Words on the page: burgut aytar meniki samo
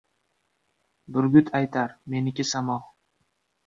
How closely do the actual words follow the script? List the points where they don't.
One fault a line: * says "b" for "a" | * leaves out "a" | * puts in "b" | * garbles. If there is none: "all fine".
all fine